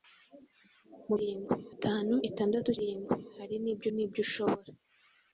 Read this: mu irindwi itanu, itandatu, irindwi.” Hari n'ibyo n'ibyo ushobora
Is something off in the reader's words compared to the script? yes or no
no